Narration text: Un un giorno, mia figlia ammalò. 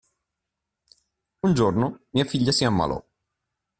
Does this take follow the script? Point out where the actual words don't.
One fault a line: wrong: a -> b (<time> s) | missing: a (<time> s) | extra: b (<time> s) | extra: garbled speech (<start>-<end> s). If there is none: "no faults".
missing: un (1.5 s)
extra: si (2.5 s)